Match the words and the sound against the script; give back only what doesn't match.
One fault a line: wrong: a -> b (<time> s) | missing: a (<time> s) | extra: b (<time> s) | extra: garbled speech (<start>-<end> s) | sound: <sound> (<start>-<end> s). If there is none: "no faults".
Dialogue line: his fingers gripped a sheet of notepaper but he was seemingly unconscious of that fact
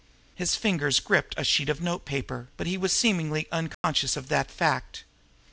sound: dropout (3.7-3.8 s)